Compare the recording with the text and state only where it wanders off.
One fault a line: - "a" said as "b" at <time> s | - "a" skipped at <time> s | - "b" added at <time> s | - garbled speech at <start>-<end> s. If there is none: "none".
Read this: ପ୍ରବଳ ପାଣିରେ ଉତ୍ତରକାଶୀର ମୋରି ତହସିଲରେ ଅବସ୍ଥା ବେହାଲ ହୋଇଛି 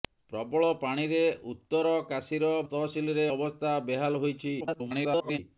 - "ମୋରି" skipped at 2.5 s
- garbled speech at 4.6-5.4 s